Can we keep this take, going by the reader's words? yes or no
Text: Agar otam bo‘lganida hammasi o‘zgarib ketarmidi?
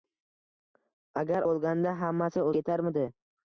no